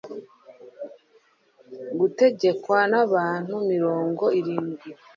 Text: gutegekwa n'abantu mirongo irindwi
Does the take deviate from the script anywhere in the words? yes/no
no